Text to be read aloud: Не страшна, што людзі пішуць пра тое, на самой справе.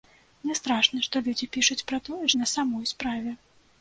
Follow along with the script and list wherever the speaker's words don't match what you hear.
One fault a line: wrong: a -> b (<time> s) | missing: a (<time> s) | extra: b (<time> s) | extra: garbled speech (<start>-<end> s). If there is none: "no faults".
no faults